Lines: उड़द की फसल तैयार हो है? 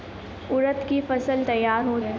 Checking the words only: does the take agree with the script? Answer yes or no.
yes